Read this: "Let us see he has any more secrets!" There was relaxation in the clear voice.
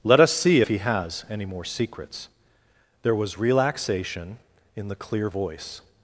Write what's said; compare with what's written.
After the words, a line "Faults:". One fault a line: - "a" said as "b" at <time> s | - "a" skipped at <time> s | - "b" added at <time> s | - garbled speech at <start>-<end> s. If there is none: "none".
"Let us see he has any more secrets!" There was relaxation in the clear voice.
Faults:
none